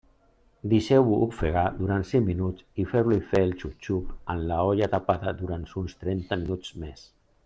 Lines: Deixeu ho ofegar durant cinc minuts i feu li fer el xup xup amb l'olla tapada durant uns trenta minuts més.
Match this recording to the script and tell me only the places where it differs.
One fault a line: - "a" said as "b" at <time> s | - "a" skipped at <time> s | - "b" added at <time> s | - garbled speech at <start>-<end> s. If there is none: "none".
none